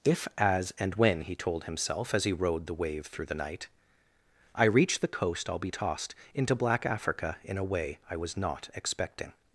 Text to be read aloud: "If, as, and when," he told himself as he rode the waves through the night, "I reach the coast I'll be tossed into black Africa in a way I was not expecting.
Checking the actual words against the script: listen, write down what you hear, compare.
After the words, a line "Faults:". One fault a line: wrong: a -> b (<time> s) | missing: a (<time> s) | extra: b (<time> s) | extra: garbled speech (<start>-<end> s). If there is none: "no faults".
"If, as, and when," he told himself as he rode the wave through the night, "I reach the coast I'll be tossed into black Africa in a way I was not expecting.
Faults:
wrong: waves -> wave (2.7 s)